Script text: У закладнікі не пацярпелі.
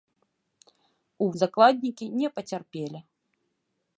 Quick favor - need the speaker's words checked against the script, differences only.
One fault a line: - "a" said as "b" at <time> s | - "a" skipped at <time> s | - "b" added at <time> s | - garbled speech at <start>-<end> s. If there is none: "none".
none